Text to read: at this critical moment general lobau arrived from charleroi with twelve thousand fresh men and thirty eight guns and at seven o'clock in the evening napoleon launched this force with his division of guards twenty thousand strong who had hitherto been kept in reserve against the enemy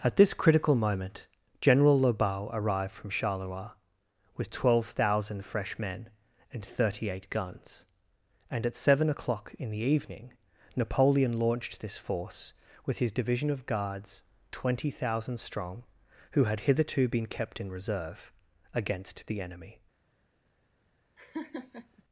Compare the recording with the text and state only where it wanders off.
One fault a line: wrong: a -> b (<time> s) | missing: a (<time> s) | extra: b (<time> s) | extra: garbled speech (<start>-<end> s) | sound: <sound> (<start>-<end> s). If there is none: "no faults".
sound: laugh (21.2-22.0 s)